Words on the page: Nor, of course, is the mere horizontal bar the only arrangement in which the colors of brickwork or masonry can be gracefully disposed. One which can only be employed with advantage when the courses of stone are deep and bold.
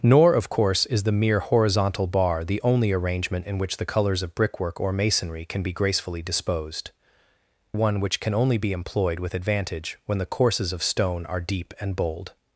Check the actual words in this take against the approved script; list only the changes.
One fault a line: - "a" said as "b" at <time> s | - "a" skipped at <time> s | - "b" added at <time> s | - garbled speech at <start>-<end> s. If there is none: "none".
none